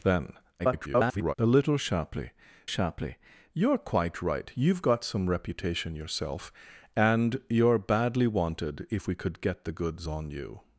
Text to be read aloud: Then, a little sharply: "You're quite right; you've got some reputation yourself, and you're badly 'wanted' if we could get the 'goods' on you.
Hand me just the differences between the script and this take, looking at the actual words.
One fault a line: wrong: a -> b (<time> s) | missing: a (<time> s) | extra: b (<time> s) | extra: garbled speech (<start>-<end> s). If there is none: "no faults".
extra: garbled speech (0.6-1.3 s)
extra: sharply (2.6 s)